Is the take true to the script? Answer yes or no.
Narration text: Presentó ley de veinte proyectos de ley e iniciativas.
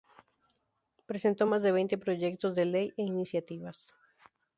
no